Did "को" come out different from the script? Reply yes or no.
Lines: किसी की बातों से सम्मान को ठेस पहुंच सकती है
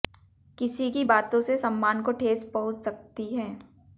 no